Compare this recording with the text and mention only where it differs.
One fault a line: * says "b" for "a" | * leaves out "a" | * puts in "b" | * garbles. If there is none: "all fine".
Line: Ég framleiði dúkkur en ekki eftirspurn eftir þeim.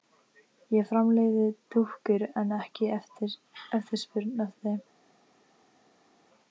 all fine